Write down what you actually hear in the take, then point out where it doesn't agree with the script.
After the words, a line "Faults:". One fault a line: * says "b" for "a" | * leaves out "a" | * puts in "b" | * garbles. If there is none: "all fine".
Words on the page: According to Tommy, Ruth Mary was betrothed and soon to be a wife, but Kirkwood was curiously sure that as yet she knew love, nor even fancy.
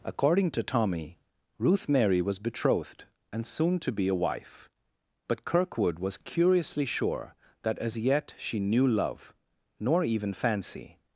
According to Tommy, Ruth Mary was betrothed and soon to be a wife, but Kirkwood was curiously sure that as yet she knew love, nor even fancy.
Faults:
all fine